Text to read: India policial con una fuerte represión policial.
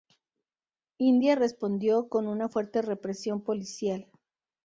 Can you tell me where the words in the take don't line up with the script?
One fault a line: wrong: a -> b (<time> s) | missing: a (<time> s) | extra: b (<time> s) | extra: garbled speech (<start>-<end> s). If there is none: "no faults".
wrong: policial -> respondió (1.4 s)